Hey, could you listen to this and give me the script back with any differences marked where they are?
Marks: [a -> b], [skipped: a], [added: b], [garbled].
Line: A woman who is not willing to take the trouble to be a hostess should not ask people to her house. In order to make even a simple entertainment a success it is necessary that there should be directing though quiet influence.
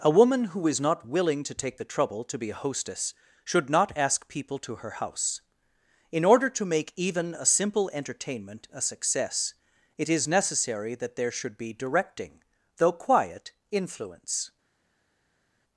A woman who is not willing to take the trouble to be a hostess should not ask people to her house. In order to make even a simple entertainment a success it is necessary that there should be directing though quiet influence.